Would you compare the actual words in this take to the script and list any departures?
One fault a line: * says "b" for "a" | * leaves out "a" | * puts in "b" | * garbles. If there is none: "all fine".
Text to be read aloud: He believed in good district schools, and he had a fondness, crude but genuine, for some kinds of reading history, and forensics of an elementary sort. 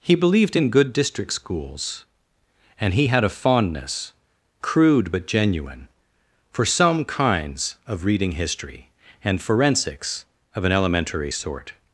all fine